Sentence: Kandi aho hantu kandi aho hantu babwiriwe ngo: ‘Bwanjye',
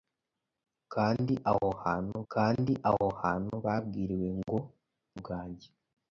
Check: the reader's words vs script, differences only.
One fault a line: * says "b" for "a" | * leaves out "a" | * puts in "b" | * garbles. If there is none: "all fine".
all fine